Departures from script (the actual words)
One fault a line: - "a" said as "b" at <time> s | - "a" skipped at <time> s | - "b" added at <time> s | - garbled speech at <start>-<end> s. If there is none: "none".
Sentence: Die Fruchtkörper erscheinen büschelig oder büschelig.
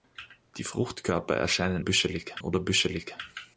none